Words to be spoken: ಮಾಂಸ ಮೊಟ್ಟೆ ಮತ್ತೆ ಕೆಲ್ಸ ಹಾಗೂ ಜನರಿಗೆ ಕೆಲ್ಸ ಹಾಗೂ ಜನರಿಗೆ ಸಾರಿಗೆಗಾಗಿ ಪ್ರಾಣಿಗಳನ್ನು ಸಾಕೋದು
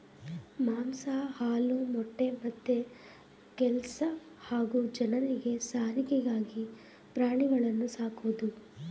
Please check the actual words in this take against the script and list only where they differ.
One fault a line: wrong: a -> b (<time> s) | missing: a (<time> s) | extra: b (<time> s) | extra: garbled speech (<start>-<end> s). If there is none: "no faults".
extra: ಹಾಲು (1.4 s)
missing: ಕೆಲ್ಸ ಹಾಗೂ ಜನರಿಗೆ (5.5 s)